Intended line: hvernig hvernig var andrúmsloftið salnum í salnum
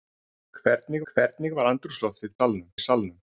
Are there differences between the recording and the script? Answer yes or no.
no